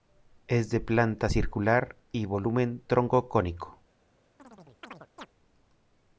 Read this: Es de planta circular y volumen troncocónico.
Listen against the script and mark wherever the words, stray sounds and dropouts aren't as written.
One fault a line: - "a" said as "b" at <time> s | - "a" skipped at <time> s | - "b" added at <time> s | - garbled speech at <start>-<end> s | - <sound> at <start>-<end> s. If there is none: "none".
- chirp at 4.4-5.3 s